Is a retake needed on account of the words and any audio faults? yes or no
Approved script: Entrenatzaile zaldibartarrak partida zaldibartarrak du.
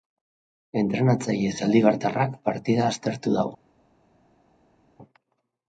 yes